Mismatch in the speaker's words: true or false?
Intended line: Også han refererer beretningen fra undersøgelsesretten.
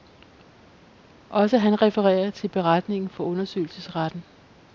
true